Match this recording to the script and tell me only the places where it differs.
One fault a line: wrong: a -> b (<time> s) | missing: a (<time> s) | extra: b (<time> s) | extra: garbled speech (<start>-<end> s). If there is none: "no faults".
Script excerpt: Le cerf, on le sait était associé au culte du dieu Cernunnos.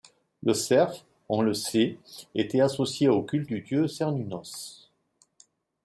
no faults